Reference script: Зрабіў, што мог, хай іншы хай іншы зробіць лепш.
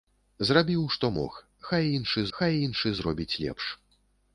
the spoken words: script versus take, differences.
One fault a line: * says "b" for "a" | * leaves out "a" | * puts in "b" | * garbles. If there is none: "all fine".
all fine